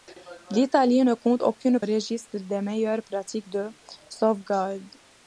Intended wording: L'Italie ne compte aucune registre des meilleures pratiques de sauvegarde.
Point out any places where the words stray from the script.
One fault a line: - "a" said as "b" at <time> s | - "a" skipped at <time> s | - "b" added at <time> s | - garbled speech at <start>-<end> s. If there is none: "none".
none